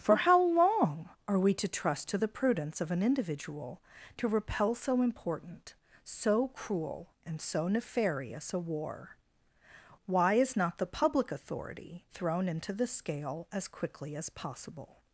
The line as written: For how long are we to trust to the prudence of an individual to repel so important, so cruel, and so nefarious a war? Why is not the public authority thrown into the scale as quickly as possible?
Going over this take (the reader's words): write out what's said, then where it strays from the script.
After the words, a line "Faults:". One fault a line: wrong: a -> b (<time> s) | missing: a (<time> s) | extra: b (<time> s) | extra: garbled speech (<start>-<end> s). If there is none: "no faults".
For how long are we to trust to the prudence of an individual to repel so important, so cruel, and so nefarious a war? Why is not the public authority thrown into the scale as quickly as possible?
Faults:
no faults